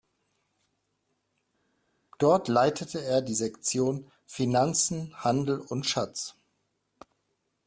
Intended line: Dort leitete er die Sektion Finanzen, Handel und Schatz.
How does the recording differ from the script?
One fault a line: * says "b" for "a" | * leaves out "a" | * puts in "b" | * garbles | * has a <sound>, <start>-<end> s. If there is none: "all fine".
all fine